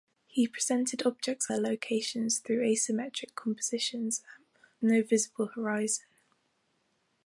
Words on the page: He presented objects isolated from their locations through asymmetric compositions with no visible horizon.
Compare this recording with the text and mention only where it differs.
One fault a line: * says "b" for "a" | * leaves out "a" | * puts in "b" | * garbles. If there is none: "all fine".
* leaves out "isolated from"
* leaves out "with"